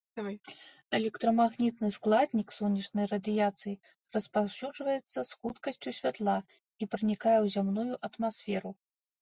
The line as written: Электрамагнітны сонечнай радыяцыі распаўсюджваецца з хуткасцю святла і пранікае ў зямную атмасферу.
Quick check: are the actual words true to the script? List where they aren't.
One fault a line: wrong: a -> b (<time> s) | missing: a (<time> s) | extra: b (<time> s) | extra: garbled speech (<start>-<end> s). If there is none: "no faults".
extra: складнік (2.0 s)